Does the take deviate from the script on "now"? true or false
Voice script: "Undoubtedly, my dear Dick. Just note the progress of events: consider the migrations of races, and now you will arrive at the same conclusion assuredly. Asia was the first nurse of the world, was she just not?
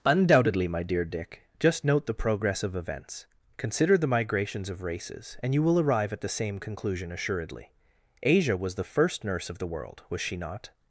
true